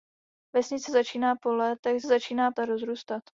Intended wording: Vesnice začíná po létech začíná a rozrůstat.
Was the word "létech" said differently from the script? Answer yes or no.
no